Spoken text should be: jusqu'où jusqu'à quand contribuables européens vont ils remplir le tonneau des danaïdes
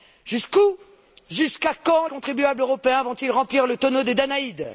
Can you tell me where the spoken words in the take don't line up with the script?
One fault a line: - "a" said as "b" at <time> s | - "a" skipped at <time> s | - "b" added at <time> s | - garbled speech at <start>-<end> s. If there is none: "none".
none